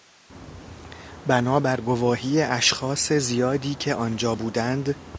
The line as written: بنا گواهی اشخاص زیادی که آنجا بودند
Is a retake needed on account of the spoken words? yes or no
yes